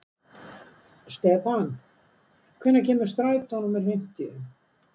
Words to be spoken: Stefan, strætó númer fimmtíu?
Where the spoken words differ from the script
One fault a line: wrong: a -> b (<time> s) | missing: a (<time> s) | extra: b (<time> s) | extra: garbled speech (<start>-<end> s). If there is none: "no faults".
extra: hvenær kemur (2.6 s)